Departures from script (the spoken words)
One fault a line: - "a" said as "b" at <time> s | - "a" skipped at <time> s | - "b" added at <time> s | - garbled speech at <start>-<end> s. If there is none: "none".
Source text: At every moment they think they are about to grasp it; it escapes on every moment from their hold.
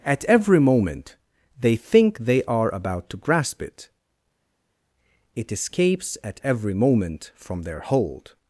- "on" said as "at" at 6.2 s